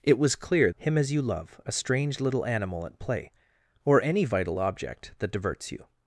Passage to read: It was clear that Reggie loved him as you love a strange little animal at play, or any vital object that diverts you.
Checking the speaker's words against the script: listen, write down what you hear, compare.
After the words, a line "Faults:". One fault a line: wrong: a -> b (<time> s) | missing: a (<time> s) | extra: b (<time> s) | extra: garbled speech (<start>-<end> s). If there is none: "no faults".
It was clear him as you love a strange little animal at play, or any vital object that diverts you.
Faults:
missing: that Reggie loved (0.7 s)